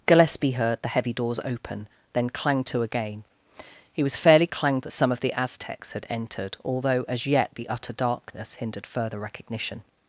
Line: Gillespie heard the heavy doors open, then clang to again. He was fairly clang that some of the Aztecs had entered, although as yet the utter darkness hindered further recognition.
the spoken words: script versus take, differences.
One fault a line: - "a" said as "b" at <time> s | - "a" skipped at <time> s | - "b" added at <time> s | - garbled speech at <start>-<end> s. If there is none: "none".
none